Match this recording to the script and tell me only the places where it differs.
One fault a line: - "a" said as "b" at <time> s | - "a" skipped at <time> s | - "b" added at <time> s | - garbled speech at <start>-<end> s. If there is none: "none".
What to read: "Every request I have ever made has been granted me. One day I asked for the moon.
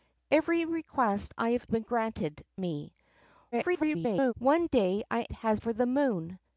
- "ever made has" skipped at 1.7 s
- garbled speech at 3.5-4.3 s
- "asked" said as "has" at 5.3 s